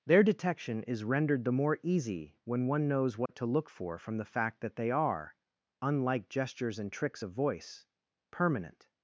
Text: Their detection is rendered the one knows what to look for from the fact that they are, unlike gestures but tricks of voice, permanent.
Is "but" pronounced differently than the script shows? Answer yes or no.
yes